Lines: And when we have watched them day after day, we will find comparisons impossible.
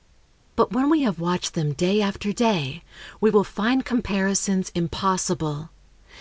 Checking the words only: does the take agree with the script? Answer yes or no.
no